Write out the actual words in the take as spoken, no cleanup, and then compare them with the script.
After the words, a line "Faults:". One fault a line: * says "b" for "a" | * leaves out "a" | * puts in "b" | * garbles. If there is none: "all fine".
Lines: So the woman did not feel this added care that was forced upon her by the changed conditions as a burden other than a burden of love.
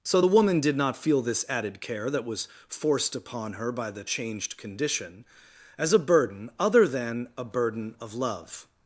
So the woman did not feel this added care that was forced upon her by the changed condition as a burden other than a burden of love.
Faults:
* says "condition" for "conditions"